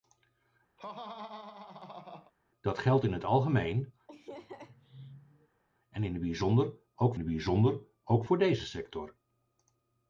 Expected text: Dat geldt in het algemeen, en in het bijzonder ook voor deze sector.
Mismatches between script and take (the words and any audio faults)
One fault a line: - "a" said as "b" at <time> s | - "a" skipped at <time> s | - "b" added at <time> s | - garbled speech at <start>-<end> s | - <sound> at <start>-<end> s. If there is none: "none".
- laugh at 0.8-2.3 s
- laugh at 4.1-5.6 s
- "het bijzonder ook" added at 7.2 s